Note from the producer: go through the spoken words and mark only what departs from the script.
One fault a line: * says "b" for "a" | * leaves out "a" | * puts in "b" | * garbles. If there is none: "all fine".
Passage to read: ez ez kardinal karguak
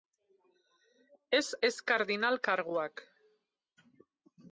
all fine